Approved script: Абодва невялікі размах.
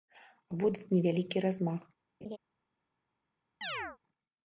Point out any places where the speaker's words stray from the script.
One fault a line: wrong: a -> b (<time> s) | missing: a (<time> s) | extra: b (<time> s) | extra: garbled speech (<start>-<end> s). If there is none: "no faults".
no faults